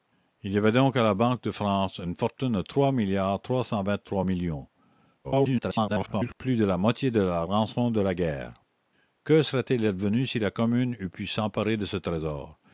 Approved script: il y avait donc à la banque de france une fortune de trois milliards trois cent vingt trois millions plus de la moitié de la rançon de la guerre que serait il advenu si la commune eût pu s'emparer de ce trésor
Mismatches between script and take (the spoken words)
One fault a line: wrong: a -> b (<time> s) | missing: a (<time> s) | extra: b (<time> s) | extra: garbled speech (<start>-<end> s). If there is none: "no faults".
extra: garbled speech (5.2-6.3 s)